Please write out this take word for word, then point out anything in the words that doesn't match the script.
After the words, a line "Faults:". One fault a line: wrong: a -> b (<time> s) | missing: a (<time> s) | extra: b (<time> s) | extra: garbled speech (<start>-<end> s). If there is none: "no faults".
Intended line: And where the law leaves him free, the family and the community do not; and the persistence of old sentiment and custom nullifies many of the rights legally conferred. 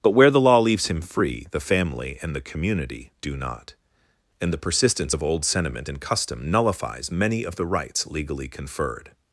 But where the law leaves him free, the family and the community do not; and the persistence of old sentiment and custom nullifies many of the rights legally conferred.
Faults:
wrong: And -> But (0.0 s)